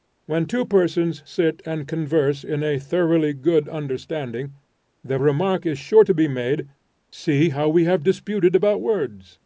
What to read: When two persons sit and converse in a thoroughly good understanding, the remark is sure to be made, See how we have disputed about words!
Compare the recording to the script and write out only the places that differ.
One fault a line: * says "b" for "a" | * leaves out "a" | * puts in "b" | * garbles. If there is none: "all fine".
all fine